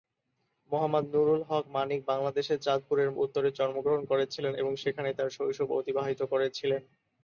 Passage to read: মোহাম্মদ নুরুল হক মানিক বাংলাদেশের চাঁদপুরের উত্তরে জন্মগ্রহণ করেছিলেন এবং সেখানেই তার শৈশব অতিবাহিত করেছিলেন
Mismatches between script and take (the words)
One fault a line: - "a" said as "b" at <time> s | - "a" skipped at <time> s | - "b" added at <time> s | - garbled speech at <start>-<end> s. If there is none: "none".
none